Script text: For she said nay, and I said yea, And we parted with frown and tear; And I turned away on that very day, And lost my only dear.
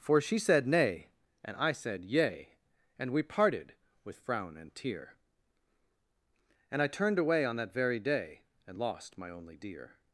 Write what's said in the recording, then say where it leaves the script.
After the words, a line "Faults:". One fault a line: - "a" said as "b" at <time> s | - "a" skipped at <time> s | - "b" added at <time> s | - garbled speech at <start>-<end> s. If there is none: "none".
For she said nay, and I said yea, And we parted with frown and tear; And I turned away on that very day, And lost my only dear.
Faults:
none